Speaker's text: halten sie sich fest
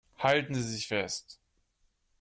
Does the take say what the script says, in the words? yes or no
yes